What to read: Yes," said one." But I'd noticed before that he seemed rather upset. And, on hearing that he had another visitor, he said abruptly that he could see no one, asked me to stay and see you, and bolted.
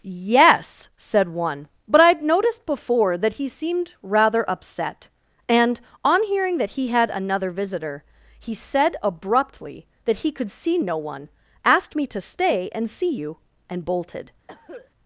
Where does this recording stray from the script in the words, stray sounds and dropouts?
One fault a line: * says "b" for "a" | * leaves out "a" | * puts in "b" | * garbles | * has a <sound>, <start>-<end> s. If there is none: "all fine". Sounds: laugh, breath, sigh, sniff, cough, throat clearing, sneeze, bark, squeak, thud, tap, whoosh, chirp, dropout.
* has a cough, 14.5-14.9 s